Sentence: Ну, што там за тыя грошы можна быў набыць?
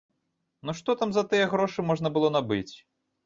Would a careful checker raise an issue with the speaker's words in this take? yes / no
yes